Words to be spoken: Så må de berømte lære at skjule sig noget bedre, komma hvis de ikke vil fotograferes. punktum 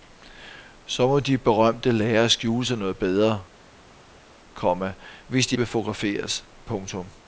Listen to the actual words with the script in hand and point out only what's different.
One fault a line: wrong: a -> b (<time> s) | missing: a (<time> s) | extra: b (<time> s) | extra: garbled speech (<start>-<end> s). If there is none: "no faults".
missing: ikke (5.6 s)